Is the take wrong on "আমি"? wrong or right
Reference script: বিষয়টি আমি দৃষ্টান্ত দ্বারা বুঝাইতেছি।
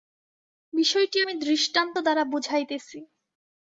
right